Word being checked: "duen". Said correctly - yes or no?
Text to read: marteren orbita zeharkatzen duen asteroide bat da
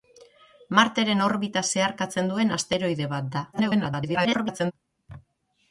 yes